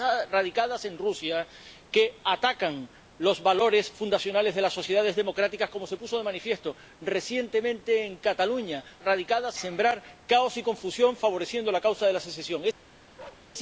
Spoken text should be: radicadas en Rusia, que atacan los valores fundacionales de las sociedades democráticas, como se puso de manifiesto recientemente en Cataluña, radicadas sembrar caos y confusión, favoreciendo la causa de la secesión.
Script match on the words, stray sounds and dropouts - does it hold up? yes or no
no